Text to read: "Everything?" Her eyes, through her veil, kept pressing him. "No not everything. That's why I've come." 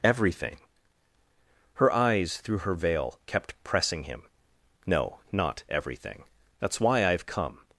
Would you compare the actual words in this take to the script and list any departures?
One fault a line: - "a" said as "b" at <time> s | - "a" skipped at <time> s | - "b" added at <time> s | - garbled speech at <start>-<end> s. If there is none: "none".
none